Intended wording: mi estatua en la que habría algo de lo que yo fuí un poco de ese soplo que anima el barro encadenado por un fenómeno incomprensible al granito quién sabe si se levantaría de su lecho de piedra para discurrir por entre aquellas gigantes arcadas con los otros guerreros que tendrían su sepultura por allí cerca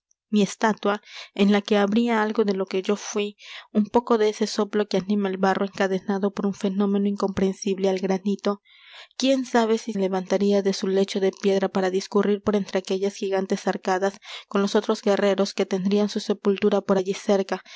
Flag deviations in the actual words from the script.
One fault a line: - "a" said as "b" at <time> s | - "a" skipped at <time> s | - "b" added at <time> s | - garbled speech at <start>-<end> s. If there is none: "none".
- "se" skipped at 9.9 s